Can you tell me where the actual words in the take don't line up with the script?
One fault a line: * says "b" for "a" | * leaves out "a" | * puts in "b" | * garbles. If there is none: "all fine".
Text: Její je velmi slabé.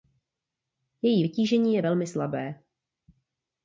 * puts in "vytížení"